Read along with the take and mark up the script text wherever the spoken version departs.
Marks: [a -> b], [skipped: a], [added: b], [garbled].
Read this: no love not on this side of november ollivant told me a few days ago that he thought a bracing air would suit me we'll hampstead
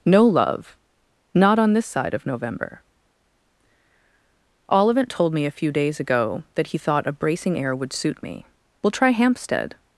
no love not on this side of november ollivant told me a few days ago that he thought a bracing air would suit me we'll [added: try] hampstead